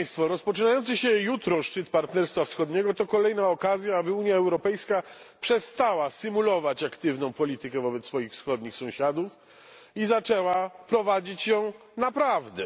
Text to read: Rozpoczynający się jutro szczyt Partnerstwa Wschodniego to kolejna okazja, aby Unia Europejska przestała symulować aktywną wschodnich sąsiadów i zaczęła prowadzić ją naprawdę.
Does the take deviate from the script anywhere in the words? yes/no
yes